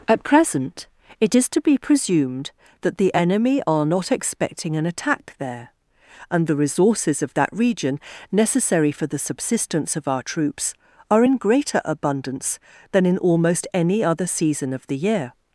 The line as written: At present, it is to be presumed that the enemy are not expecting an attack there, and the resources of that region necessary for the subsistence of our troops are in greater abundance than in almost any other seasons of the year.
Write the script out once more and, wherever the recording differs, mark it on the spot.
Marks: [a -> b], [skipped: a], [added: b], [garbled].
At present, it is to be presumed that the enemy are not expecting an attack there, and the resources of that region necessary for the subsistence of our troops are in greater abundance than in almost any other [seasons -> season] of the year.